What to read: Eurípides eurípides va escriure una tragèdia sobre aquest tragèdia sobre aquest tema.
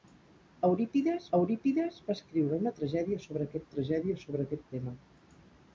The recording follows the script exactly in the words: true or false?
true